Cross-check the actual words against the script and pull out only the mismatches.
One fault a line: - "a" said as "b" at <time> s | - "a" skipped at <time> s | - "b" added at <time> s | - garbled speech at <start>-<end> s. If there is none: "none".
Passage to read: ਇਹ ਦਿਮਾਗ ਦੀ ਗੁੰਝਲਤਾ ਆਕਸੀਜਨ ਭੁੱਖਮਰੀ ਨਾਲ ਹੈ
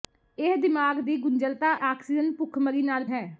none